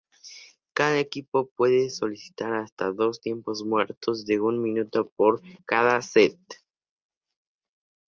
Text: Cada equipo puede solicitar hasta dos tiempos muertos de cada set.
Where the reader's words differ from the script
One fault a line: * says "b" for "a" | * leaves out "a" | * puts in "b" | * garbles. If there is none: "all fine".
* puts in "un minuto por"